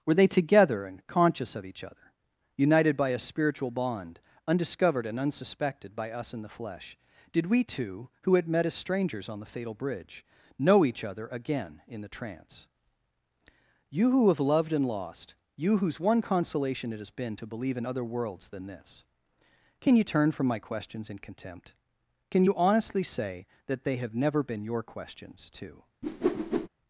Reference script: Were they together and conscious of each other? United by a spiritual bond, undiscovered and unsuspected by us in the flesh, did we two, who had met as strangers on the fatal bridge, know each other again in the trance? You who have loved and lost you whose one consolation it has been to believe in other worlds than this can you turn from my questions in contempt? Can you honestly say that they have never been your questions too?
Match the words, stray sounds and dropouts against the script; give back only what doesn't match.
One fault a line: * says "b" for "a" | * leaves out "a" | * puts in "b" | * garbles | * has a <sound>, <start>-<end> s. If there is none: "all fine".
* has a whoosh, 26.0-26.7 s